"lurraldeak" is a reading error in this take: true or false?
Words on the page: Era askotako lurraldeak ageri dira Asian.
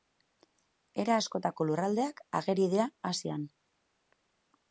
false